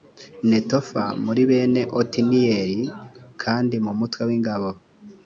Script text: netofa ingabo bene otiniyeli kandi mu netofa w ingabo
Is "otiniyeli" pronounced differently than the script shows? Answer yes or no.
no